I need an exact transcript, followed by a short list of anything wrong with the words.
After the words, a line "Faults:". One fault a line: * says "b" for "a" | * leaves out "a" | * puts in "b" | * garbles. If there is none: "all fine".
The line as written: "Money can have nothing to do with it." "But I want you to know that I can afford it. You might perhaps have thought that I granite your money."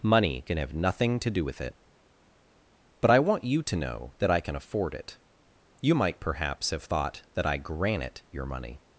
"Money can have nothing to do with it." "But I want you to know that I can afford it. You might perhaps have thought that I granite your money."
Faults:
all fine